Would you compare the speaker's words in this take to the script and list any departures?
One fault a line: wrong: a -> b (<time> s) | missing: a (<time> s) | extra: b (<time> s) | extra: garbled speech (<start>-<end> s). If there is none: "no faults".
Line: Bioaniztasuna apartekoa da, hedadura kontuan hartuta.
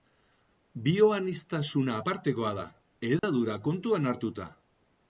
no faults